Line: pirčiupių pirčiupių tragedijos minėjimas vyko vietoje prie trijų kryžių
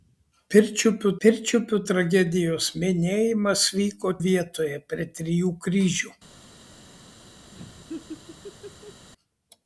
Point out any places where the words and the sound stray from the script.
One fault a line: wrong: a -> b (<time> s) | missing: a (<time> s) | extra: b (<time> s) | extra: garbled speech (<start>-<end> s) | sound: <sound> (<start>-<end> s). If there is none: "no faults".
sound: laugh (7.5-9.1 s)